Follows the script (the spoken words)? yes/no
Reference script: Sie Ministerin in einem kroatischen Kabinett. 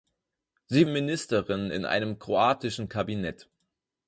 yes